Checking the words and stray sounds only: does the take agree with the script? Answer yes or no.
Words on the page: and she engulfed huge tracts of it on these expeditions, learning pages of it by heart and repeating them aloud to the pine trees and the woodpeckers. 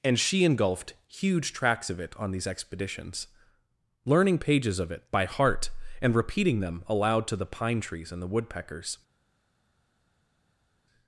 yes